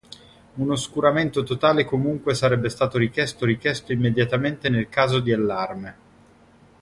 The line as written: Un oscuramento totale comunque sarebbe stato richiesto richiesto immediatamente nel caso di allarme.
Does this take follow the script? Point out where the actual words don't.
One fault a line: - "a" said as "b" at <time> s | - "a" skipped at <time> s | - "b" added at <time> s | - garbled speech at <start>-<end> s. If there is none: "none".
none